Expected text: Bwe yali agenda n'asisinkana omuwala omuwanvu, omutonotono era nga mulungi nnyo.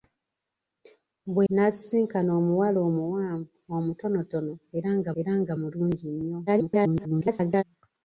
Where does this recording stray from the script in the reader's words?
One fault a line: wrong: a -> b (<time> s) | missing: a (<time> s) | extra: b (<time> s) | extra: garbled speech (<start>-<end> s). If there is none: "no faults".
missing: yali agenda (1.4 s)
extra: era nga (5.2 s)
extra: garbled speech (6.5-7.6 s)